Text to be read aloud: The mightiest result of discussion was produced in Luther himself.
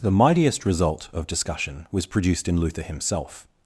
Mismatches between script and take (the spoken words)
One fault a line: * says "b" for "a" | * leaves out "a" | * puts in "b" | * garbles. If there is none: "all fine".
all fine